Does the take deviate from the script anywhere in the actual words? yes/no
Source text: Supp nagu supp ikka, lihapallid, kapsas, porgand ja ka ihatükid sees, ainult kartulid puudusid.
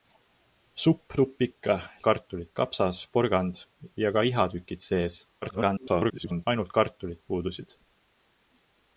yes